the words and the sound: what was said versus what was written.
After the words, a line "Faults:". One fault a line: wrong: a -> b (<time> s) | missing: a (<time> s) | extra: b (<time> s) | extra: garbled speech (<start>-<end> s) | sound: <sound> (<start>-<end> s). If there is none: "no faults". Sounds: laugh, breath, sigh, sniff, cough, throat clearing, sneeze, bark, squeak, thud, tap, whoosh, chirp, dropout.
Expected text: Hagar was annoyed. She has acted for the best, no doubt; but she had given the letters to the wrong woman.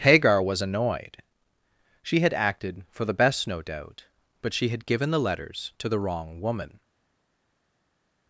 Hagar was annoyed. She had acted for the best, no doubt; but she had given the letters to the wrong woman.
Faults:
wrong: has -> had (2.2 s)